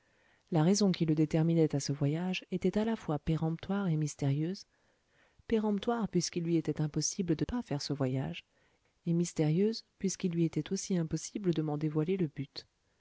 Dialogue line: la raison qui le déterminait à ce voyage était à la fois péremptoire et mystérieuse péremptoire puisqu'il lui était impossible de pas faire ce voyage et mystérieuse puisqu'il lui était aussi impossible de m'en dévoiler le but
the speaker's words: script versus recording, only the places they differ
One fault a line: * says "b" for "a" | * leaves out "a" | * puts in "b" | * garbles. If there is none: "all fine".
all fine